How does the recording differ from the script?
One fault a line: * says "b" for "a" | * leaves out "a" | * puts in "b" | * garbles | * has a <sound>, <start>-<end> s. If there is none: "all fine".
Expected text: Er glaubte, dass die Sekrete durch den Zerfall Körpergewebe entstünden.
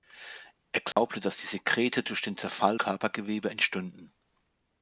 * has a dropout, 0.9-1.0 s